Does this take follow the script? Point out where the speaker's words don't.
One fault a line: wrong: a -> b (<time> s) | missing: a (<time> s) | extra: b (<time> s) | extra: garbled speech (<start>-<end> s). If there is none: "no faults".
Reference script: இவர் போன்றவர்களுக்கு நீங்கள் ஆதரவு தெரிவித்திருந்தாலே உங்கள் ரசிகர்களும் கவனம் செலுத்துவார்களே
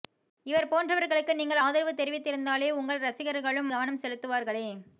no faults